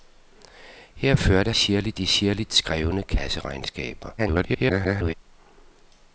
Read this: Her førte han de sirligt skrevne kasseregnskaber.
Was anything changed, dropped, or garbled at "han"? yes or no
yes